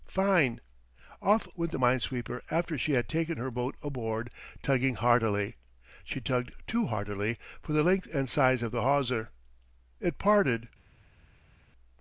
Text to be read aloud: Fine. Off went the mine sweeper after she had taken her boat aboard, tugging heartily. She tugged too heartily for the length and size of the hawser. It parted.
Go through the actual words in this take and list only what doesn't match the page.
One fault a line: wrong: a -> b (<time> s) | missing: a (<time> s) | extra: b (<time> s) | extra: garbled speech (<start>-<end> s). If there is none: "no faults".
no faults